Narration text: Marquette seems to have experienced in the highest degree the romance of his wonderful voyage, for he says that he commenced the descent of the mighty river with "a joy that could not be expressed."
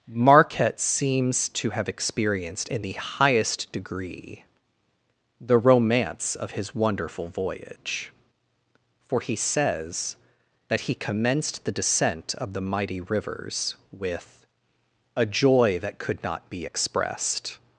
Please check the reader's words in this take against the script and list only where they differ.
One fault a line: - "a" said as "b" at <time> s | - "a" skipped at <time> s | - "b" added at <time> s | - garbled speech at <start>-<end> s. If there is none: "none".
- "river" said as "rivers" at 13.0 s